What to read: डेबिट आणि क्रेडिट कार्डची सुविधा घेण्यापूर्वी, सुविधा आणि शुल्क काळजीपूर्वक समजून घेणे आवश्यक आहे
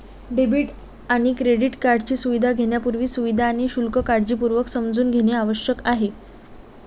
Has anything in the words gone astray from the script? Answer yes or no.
no